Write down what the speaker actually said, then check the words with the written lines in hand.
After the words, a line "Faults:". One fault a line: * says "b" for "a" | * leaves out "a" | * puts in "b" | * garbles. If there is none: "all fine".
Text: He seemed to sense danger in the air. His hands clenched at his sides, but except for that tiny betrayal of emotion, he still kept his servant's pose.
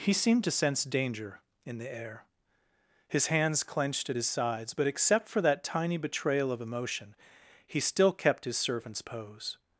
He seemed to sense danger in the air. His hands clenched at his sides, but except for that tiny betrayal of emotion, he still kept his servant's pose.
Faults:
all fine